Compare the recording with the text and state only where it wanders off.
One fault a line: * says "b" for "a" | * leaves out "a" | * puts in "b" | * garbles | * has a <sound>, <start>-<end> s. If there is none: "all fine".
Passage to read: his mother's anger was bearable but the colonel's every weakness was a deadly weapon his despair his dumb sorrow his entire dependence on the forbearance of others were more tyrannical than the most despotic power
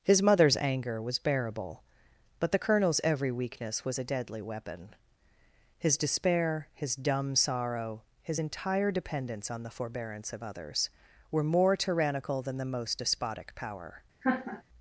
* has a laugh, 14.2-14.6 s